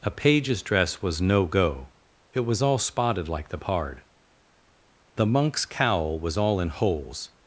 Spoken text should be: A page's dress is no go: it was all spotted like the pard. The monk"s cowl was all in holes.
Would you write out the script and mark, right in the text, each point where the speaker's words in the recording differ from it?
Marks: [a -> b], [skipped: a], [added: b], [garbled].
A page's dress [is -> was] no go: it was all spotted like the pard. The monk"s cowl was all in holes.